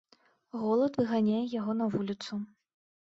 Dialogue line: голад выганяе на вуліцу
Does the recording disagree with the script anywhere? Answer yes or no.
yes